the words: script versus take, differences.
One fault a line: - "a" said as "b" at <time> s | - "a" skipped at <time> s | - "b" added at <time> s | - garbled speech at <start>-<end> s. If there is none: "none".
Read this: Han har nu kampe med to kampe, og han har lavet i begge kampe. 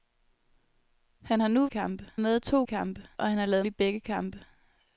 none